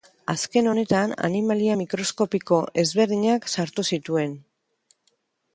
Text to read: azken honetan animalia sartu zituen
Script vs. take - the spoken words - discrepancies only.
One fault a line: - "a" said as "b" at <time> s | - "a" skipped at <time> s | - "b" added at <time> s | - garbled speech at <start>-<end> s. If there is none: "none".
- "mikroskopiko ezberdinak" added at 1.8 s